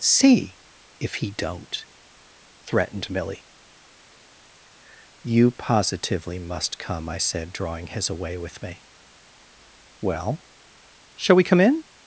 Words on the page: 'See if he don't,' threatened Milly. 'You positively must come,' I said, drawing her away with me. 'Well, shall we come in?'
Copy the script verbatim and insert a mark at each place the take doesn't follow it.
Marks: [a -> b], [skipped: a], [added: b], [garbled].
'See if he don't,' threatened Milly. 'You positively must come,' I said, drawing [her -> his] away with me. 'Well, shall we come in?'